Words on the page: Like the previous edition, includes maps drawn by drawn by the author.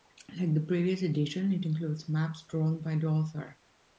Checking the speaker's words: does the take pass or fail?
fail